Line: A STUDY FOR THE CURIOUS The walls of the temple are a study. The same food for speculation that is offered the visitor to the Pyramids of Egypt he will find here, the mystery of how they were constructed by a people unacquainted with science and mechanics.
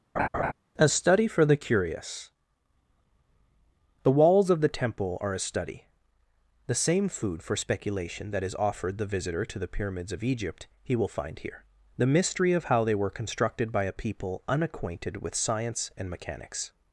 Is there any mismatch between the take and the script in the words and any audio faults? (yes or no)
yes